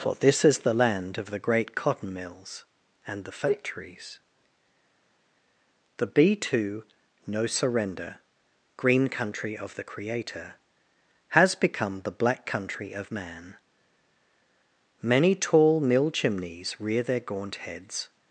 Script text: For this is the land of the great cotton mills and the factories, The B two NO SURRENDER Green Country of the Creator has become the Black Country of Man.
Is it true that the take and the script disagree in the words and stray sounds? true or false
true